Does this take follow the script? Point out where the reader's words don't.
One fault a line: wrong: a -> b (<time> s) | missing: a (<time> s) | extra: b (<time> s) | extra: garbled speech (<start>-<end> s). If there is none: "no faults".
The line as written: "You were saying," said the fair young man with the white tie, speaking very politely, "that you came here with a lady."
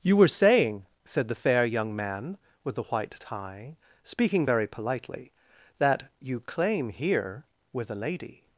wrong: came -> claim (6.4 s)